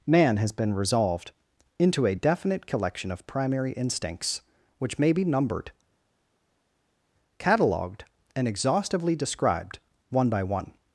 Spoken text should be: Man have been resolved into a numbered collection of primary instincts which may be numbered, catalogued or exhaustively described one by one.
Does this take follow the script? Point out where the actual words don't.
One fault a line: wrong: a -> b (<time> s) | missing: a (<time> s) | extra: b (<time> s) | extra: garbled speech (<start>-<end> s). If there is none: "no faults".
wrong: have -> has (0.4 s)
wrong: numbered -> definite (2.1 s)
wrong: or -> and (8.3 s)